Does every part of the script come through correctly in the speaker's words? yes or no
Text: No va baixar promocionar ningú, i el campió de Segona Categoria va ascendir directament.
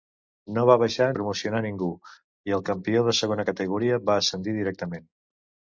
yes